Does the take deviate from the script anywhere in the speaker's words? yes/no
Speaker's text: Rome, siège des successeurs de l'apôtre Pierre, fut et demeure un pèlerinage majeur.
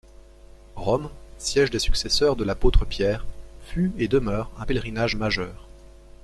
no